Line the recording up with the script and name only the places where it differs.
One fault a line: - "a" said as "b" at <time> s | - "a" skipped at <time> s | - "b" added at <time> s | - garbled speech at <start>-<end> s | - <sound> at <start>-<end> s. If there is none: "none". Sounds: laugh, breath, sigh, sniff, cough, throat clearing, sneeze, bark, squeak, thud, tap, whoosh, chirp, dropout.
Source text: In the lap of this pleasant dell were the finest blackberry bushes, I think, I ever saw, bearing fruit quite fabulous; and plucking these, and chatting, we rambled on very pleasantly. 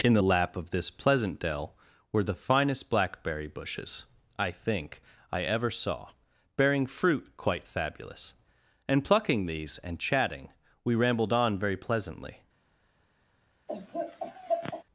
- laugh at 13.7-14.8 s